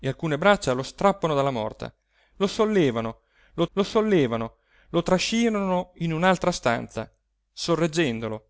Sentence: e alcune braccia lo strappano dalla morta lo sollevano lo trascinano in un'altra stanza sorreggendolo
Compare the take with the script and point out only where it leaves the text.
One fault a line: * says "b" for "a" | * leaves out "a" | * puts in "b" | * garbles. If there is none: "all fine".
* puts in "lo sollevano lo"